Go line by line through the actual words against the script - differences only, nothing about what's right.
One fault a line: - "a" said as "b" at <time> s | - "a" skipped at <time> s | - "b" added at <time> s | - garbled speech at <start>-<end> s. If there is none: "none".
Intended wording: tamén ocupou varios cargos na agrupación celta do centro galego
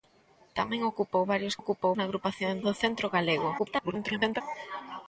- "cargos" said as "ocupou" at 1.6 s
- "celta" skipped at 2.5 s
- garbled speech at 3.6-4.4 s